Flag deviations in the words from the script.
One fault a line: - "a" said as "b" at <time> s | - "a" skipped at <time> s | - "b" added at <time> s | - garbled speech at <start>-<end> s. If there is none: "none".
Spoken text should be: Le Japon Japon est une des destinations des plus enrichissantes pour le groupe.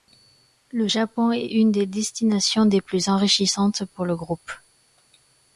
- "Japon" skipped at 1.3 s